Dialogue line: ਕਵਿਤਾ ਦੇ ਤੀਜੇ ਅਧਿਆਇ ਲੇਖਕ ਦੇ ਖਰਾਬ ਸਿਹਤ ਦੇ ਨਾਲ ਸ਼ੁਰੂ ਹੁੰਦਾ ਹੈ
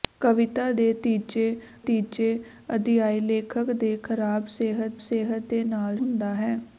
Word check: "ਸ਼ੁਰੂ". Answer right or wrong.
wrong